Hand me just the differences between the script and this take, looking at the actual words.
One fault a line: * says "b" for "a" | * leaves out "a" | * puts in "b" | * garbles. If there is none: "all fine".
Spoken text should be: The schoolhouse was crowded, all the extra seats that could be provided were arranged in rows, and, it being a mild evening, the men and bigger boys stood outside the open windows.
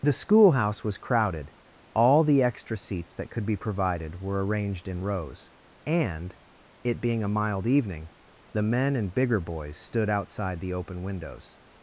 all fine